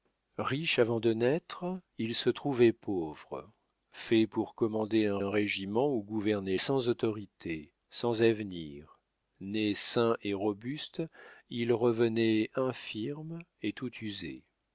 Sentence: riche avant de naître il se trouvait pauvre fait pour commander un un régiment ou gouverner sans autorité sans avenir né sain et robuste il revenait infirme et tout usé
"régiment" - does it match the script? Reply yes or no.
yes